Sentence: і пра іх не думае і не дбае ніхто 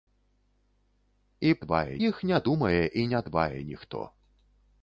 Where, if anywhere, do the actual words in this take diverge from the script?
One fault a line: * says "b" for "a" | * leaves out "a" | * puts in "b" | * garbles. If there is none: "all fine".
* says "дбае" for "пра"